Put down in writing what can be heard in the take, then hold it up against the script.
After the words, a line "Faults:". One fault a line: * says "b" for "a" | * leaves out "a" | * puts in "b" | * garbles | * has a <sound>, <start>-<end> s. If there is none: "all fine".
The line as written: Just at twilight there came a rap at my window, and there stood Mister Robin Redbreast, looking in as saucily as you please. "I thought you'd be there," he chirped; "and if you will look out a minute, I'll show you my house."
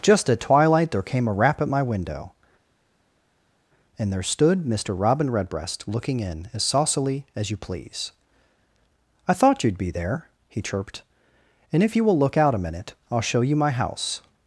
Just at twilight there came a rap at my window, and there stood Mister Robin Redbreast, looking in as saucily as you please. "I thought you'd be there," he chirped; "and if you will look out a minute, I'll show you my house."
Faults:
all fine